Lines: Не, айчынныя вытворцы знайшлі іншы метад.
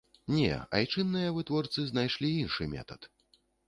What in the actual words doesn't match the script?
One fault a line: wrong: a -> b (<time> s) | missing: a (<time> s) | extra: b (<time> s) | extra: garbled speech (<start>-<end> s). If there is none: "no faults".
no faults